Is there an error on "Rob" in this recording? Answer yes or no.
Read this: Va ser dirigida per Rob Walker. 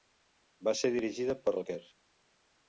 yes